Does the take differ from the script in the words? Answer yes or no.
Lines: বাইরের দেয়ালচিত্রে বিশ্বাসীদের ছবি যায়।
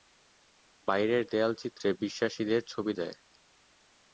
no